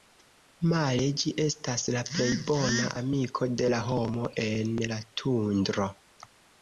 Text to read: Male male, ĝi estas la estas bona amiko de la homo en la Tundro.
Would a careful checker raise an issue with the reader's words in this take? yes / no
yes